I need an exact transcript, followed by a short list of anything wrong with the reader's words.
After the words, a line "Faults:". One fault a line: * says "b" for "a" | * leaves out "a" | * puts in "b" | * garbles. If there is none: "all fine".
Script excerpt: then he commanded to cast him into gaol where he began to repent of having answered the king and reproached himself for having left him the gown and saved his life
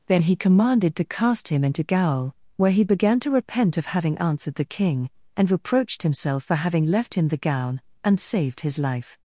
then he commanded to cast him into gaol where he began to repent of having answered the king and reproached himself for having left him the gown and saved his life
Faults:
all fine